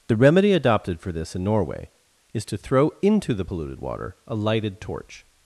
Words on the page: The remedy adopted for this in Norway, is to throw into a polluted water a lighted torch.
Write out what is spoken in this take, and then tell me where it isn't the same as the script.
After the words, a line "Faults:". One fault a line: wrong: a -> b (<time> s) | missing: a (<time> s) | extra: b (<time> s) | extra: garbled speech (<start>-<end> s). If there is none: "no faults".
The remedy adopted for this in Norway, is to throw into the polluted water a lighted torch.
Faults:
wrong: a -> the (3.3 s)